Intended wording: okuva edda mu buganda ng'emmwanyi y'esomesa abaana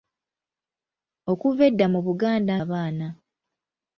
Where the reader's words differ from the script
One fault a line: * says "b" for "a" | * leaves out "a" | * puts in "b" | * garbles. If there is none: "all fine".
* leaves out "ng'emmwanyi y'esomesa"